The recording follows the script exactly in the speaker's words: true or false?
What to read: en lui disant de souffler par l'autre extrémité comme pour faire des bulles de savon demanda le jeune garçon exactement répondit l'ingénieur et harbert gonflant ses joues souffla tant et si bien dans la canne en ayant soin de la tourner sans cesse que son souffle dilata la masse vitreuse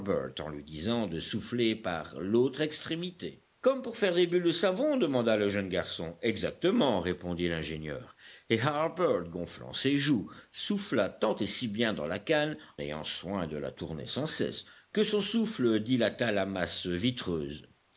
false